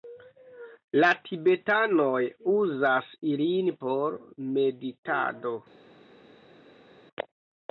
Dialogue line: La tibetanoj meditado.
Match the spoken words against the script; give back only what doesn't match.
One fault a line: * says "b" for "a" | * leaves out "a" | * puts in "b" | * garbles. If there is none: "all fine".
* puts in "uzas ilin por"